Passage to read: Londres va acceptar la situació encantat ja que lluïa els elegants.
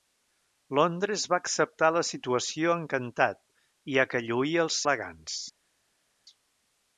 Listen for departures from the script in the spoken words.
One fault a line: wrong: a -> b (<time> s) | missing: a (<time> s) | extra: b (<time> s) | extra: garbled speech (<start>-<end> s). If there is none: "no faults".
no faults